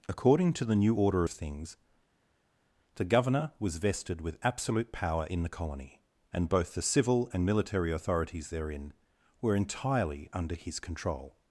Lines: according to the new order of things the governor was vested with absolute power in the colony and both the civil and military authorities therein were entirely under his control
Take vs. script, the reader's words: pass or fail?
pass